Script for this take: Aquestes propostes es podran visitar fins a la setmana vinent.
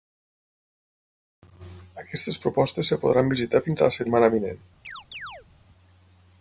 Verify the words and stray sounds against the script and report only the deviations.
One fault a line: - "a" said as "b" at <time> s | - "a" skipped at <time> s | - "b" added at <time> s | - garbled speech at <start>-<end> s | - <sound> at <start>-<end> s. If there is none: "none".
- chirp at 4.8-5.5 s